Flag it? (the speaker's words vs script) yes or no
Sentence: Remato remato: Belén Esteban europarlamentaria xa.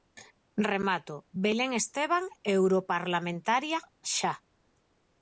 yes